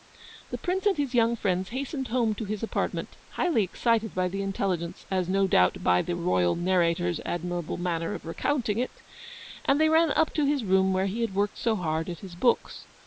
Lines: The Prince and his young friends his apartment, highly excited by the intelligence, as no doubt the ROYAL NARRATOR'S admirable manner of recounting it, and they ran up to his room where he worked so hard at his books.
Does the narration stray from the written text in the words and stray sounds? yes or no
yes